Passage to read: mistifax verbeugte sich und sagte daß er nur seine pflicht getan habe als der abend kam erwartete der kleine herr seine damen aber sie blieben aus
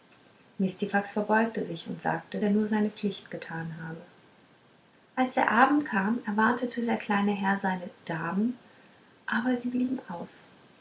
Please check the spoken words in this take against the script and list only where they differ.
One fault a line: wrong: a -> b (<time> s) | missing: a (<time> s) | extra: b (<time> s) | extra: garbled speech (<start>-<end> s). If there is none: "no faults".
missing: daß (2.4 s)